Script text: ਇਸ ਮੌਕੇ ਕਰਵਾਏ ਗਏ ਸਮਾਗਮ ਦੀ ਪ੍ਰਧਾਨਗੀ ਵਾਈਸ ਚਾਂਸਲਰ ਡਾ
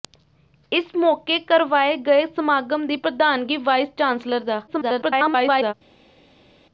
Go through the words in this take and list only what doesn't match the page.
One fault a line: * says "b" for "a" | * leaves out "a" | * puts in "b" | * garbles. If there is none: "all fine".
* garbles